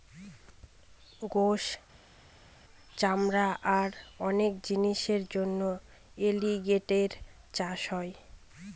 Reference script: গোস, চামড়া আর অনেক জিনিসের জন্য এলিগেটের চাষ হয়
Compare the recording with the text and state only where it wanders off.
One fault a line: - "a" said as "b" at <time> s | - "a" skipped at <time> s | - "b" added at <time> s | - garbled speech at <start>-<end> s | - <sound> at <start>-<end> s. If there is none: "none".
none